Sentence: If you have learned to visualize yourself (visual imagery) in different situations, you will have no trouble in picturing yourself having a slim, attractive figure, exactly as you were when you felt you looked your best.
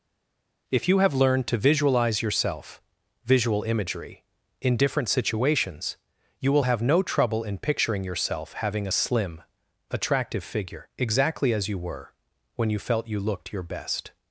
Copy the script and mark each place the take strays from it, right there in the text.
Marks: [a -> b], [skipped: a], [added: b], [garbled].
If you have learned to visualize yourself (visual imagery) in different situations, you will have no trouble in picturing yourself having a slim, attractive figure, exactly as you were when you felt you looked your best.